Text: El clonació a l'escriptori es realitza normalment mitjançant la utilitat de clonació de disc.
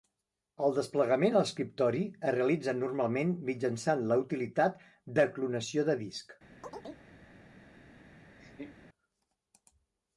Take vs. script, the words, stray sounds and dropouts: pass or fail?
fail